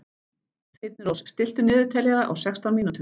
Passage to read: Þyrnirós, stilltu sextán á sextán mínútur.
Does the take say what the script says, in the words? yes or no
no